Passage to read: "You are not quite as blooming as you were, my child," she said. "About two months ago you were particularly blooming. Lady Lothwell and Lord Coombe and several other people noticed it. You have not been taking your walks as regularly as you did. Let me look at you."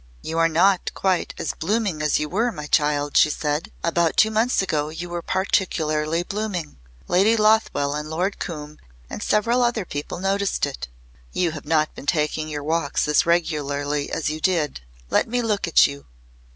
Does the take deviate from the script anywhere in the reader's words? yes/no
no